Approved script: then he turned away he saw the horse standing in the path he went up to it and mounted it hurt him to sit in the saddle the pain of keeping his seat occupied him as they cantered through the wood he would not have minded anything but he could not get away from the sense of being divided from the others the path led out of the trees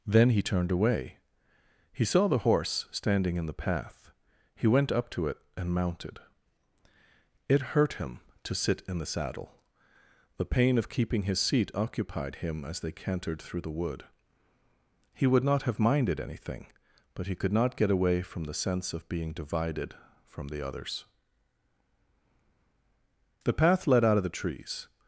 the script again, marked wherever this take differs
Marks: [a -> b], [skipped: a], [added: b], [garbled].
then he turned away he saw the horse standing in the path he went up to it and mounted it hurt him to sit in the saddle the pain of keeping his seat occupied him as they cantered through the wood he would not have minded anything but he could not get away from the sense of being divided from the others the path led out of the trees